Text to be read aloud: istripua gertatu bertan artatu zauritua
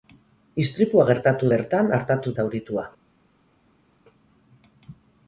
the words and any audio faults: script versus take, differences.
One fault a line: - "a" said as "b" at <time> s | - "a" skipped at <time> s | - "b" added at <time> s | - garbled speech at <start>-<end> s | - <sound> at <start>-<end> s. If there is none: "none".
none